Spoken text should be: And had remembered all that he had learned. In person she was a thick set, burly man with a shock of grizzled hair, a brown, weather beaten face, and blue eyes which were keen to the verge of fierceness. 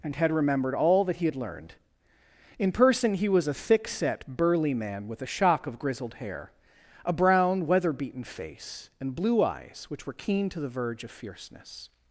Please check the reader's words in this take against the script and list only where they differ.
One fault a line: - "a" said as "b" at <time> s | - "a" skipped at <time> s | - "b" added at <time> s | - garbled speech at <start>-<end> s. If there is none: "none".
- "she" said as "he" at 3.2 s